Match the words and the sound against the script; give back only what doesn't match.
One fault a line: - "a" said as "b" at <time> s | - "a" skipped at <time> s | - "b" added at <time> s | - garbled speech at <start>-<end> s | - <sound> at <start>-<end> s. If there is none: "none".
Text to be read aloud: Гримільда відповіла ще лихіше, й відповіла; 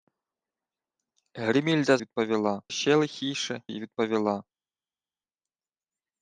none